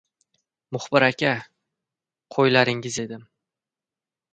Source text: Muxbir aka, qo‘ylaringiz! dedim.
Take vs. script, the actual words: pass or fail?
pass